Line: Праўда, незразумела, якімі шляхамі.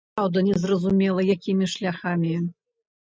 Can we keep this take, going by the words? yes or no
yes